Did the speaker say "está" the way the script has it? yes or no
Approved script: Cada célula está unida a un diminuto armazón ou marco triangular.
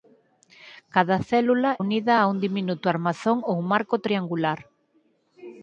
no